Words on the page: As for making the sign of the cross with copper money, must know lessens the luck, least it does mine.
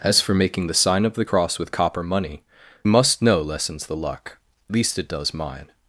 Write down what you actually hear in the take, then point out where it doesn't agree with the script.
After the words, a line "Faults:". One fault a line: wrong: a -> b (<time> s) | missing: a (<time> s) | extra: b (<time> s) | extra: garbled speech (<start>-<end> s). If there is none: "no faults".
As for making the sign of the cross with copper money, must know lessens the luck, least it does mine.
Faults:
no faults